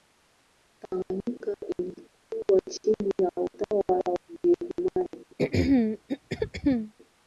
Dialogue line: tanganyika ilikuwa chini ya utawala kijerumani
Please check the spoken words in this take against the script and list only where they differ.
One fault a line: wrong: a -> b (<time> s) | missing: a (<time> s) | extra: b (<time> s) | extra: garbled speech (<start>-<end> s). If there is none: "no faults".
no faults